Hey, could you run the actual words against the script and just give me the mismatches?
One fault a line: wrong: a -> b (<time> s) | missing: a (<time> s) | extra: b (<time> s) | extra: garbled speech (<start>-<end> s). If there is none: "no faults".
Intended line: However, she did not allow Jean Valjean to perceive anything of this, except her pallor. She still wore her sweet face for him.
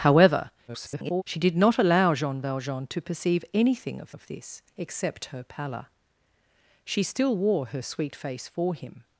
extra: garbled speech (0.7-1.2 s)
extra: of (4.1 s)